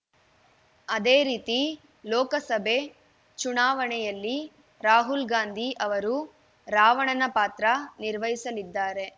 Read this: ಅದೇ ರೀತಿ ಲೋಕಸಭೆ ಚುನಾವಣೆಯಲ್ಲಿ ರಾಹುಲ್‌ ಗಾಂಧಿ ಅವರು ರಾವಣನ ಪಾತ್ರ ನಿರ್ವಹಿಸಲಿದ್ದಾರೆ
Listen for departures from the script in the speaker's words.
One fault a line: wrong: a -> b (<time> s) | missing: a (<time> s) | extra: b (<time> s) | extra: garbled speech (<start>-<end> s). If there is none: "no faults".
no faults